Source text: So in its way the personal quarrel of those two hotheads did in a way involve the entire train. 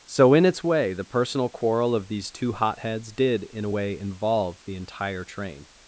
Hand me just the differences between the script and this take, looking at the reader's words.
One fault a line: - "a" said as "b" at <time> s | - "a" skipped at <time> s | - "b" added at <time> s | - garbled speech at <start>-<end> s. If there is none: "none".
- "those" said as "these" at 2.1 s